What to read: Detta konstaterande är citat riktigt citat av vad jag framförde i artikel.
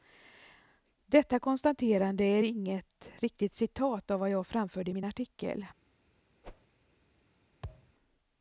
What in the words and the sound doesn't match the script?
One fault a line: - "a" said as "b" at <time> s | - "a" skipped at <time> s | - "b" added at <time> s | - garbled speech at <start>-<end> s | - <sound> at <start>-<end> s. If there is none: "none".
- "citat" said as "inget" at 2.4 s
- "min" added at 4.9 s
- whoosh at 6.4-6.7 s
- thud at 7.6-7.9 s